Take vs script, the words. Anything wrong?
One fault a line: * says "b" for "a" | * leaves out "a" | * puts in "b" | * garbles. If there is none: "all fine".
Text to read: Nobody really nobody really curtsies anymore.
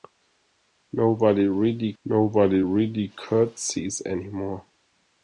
all fine